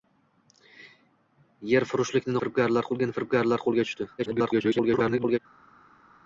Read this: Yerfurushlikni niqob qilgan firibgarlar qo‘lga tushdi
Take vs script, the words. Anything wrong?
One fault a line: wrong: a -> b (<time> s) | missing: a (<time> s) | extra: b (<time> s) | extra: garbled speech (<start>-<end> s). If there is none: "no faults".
wrong: niqob -> firibgarlar (2.4 s)
extra: garbled speech (4.2-5.4 s)